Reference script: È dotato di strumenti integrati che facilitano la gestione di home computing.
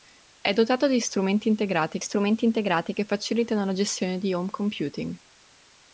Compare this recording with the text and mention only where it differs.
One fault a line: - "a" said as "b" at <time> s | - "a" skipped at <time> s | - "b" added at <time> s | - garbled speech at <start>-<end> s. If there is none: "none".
- "strumenti integrati" added at 2.0 s